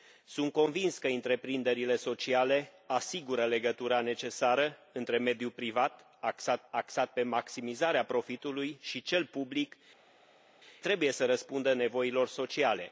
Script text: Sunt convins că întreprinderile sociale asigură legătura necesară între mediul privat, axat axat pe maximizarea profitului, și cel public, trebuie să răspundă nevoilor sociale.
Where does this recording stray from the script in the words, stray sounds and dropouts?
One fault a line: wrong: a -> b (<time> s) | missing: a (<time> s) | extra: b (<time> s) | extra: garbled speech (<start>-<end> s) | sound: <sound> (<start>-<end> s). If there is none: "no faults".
no faults